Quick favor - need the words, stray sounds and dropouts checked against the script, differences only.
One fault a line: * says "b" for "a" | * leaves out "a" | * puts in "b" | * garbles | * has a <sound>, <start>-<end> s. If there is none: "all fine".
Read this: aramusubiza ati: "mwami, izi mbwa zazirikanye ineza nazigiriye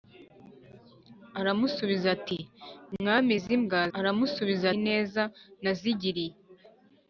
* says "aramusubiza" for "zazirikanye"